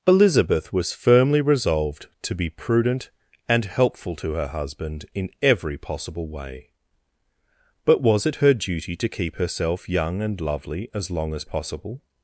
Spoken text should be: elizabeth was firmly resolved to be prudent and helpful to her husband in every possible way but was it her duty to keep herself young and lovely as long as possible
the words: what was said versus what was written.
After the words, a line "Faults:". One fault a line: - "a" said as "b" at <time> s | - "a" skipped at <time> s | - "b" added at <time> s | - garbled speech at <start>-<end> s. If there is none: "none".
elizabeth was firmly resolved to be prudent and helpful to her husband in every possible way but was it her duty to keep herself young and lovely as long as possible
Faults:
none